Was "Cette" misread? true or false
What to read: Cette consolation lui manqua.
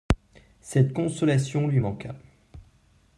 false